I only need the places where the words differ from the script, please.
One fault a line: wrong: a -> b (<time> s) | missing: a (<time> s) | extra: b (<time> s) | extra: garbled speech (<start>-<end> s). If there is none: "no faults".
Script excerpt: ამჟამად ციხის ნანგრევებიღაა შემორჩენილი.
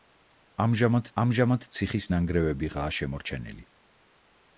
extra: ამჟამად (1.2 s)